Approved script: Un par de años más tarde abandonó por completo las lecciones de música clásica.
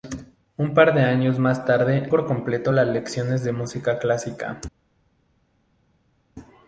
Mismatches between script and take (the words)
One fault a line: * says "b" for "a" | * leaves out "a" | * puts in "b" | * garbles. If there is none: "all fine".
* leaves out "abandonó"